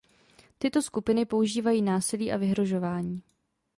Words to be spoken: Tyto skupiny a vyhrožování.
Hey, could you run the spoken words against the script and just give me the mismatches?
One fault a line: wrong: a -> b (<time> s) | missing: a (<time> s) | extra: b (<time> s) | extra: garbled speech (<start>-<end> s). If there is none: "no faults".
extra: používají násilí (1.2 s)